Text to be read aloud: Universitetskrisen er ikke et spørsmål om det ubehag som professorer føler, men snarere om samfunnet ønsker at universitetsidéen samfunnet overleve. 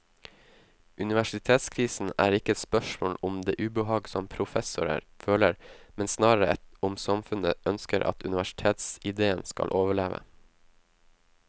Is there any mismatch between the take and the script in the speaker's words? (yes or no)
yes